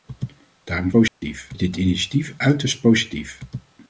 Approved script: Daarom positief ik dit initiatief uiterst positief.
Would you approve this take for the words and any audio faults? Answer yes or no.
no